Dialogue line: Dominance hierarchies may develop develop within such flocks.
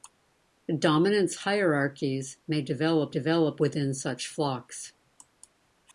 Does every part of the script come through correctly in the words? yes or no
yes